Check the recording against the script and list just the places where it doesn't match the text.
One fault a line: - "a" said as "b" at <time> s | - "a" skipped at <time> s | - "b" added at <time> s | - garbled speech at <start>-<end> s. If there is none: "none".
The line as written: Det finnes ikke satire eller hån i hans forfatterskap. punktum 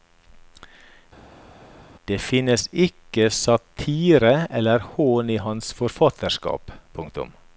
none